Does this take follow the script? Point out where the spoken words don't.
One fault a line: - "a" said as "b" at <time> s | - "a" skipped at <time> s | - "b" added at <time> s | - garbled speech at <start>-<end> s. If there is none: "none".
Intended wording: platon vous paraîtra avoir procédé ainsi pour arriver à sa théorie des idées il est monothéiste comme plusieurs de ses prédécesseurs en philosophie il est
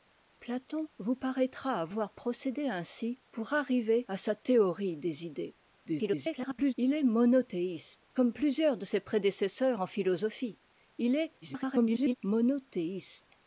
- garbled speech at 5.9-6.7 s
- garbled speech at 11.4-12.1 s